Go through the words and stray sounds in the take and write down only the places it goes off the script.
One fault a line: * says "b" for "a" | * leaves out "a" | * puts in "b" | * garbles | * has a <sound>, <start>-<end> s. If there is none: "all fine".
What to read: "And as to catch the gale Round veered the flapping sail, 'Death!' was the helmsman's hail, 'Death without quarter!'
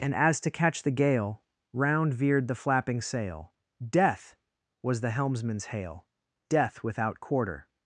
all fine